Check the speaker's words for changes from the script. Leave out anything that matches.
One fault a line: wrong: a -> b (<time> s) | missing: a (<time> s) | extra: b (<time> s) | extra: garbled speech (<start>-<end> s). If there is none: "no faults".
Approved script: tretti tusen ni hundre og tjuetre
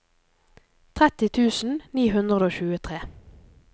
no faults